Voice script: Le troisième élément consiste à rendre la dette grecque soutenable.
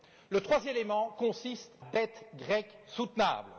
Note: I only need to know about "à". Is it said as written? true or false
false